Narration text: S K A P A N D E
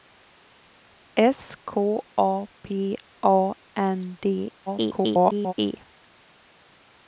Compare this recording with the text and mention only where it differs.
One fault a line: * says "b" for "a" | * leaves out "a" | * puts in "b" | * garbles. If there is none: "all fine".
* garbles